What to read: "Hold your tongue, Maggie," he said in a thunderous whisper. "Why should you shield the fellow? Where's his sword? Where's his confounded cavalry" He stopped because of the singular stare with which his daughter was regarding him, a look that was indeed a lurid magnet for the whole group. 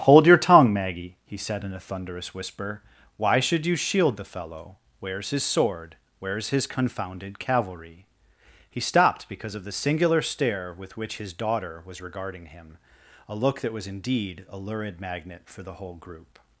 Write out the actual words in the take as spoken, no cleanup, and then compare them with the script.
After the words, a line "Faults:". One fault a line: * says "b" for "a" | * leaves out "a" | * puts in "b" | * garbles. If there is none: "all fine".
"Hold your tongue, Maggie," he said in a thunderous whisper. "Why should you shield the fellow? Where's his sword? Where's his confounded cavalry" He stopped because of the singular stare with which his daughter was regarding him, a look that was indeed a lurid magnet for the whole group.
Faults:
all fine